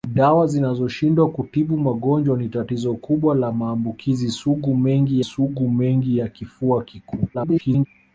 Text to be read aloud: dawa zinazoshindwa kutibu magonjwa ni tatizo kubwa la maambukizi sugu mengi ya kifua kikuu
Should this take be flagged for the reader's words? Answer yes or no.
yes